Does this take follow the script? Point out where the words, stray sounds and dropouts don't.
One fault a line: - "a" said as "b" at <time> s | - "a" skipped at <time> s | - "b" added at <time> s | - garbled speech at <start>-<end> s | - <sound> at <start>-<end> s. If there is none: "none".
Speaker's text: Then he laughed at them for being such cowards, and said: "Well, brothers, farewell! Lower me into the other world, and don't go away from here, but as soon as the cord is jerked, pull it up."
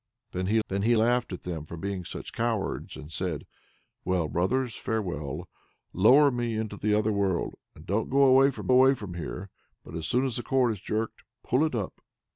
- "then he" added at 0.7 s
- "away from" added at 8.7 s